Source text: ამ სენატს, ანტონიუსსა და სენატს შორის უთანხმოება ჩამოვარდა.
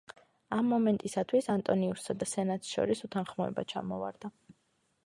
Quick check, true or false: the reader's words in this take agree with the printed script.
false